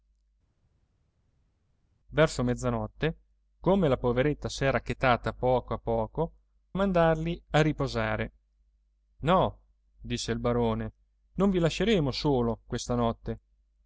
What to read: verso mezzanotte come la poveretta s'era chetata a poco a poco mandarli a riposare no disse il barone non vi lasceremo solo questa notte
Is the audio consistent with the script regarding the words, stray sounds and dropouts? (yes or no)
yes